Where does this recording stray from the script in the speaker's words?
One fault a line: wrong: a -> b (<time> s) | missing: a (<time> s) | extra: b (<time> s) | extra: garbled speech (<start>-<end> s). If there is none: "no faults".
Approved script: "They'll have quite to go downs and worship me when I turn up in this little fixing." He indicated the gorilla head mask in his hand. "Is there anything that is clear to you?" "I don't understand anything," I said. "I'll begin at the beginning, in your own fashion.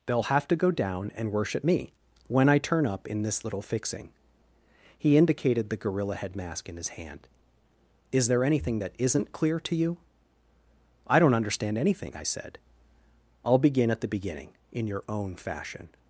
missing: quite (0.5 s)
wrong: downs -> down (0.7 s)
wrong: is -> isn't (9.0 s)